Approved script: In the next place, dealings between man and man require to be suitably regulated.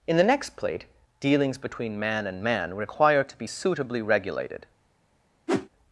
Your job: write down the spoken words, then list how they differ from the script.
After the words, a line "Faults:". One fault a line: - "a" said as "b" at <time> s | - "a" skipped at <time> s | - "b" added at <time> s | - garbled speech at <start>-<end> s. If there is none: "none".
In the next plate, dealings between man and man require to be suitably regulated.
Faults:
- "place" said as "plate" at 0.6 s